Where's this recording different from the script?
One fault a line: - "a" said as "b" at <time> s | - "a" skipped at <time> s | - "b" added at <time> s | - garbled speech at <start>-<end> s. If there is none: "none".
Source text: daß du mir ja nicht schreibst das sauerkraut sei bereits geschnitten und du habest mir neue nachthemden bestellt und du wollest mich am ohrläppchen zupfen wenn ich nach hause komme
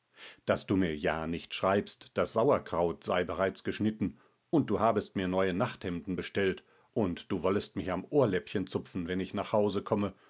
none